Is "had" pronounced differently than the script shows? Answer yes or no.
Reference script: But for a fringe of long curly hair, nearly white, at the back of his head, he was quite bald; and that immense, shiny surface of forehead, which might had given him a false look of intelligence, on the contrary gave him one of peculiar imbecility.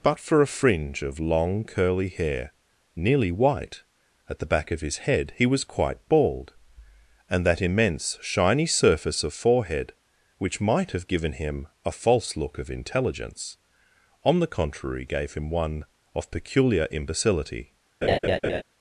yes